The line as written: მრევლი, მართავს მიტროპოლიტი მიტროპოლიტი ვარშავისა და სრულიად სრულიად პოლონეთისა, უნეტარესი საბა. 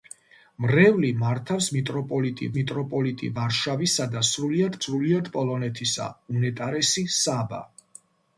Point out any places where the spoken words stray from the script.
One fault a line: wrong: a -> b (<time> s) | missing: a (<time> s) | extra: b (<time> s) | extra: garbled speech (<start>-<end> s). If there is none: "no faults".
no faults